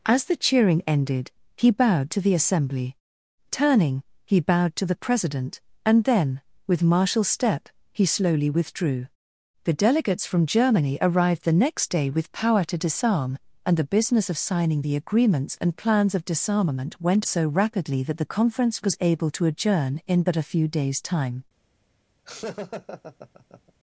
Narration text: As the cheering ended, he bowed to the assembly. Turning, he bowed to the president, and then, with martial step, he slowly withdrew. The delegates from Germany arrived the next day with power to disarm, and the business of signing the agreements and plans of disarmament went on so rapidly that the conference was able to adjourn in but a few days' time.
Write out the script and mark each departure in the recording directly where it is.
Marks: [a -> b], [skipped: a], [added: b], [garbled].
As the cheering ended, he bowed to the assembly. Turning, he bowed to the president, and then, with martial step, he slowly withdrew. The delegates from Germany arrived the next day with power to disarm, and the business of signing the agreements and plans of disarmament went [skipped: on] so rapidly that the conference was able to adjourn in but a few days' time.